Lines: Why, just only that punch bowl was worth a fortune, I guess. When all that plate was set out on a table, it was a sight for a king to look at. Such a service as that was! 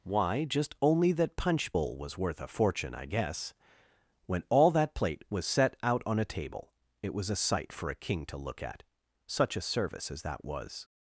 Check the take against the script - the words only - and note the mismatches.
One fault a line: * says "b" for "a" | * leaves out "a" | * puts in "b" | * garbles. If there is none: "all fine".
all fine